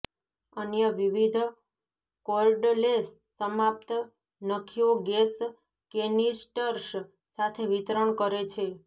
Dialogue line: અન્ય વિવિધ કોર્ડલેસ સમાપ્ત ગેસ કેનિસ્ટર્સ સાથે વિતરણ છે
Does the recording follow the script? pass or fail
fail